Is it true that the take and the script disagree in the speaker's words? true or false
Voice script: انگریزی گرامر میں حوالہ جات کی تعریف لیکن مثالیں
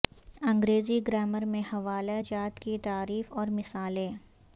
true